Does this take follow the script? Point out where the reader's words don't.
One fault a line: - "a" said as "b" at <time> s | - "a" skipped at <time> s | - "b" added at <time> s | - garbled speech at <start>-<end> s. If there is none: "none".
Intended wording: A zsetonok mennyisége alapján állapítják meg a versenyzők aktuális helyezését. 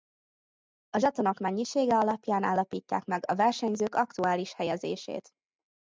none